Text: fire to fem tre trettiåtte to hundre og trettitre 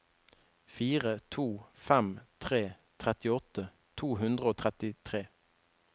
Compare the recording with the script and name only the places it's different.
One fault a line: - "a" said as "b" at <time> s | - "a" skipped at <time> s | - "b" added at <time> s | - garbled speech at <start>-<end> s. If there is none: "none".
none